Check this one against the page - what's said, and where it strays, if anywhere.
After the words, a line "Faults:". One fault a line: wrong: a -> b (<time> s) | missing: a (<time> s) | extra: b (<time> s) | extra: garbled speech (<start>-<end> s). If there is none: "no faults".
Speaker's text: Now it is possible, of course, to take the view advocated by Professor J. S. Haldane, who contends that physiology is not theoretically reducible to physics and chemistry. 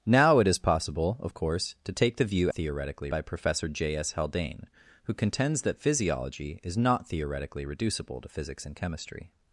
Now it is possible, of course, to take the view theoretically by Professor J. S. Haldane, who contends that physiology is not theoretically reducible to physics and chemistry.
Faults:
wrong: advocated -> theoretically (2.5 s)